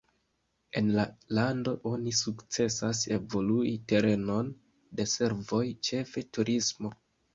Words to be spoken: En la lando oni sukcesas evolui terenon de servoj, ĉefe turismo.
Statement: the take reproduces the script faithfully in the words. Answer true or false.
true